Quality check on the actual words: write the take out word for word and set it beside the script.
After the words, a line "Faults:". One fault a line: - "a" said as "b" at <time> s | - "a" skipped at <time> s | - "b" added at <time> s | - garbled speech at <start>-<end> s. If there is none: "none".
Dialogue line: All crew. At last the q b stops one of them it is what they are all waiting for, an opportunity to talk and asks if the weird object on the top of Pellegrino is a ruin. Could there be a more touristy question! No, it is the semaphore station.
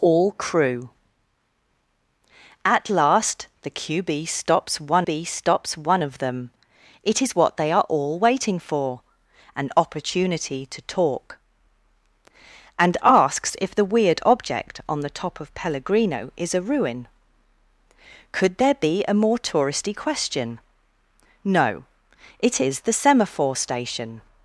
All crew. At last the q b stops one b stops one of them it is what they are all waiting for, an opportunity to talk and asks if the weird object on the top of Pellegrino is a ruin. Could there be a more touristy question! No, it is the semaphore station.
Faults:
- "b stops one" added at 5.0 s